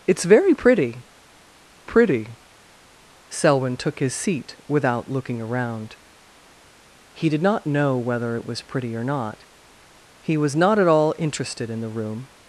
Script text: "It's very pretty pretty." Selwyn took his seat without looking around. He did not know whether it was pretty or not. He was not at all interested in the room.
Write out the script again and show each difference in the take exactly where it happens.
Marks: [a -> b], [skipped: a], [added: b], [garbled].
"It's very pretty pretty." Selwyn took his seat without looking around. He did not know whether it was pretty or not. He was not at all interested in the room.